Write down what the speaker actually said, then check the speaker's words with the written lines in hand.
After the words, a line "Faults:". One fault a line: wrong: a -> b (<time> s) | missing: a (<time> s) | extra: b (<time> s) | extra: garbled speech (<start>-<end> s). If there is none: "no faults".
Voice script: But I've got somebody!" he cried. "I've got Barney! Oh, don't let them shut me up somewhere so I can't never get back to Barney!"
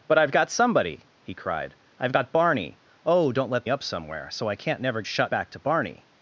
But I've got somebody!" he cried. "I've got Barney! Oh, don't let up somewhere so I can't never shut back to Barney!"
Faults:
missing: them shut me (3.6 s)
wrong: get -> shut (5.0 s)